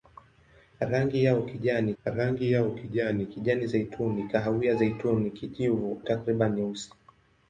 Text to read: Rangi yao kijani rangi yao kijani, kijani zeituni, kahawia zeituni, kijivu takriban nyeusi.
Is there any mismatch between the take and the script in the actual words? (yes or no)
no